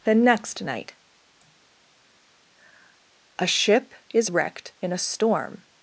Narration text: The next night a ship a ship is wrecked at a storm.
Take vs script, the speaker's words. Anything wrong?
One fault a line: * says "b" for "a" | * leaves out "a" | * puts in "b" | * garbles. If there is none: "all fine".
* leaves out "a ship"
* says "in" for "at"